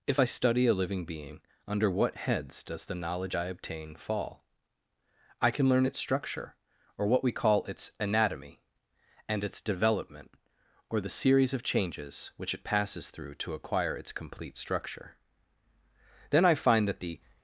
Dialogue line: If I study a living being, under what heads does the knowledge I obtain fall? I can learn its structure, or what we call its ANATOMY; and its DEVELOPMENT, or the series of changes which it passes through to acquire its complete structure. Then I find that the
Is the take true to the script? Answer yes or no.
yes